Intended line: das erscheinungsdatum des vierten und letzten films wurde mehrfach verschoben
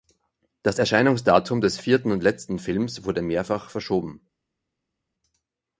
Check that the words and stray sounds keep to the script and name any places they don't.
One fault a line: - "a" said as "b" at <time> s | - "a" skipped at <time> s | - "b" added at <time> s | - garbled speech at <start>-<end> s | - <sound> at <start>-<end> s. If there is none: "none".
none